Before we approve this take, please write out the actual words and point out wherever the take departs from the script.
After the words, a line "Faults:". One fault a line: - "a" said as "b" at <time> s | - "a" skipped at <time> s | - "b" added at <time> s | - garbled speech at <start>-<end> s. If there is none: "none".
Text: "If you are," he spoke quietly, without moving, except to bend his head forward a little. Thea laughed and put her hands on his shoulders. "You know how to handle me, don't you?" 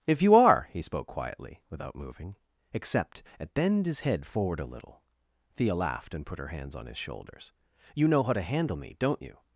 "If you are," he spoke quietly, without moving, except at bend his head forward a little. Thea laughed and put her hands on his shoulders. "You know how to handle me, don't you?"
Faults:
- "to" said as "at" at 3.4 s